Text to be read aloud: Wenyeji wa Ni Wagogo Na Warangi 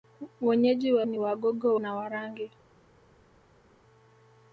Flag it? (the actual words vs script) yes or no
no